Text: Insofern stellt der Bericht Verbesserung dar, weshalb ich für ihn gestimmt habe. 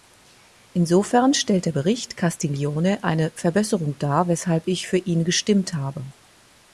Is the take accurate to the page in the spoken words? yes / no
no